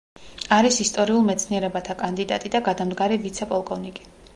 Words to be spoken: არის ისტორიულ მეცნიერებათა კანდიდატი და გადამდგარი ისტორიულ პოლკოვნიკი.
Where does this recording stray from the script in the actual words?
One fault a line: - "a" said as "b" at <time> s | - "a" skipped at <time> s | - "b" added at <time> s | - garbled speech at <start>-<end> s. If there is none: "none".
- "ისტორიულ" said as "ვიცე" at 3.3 s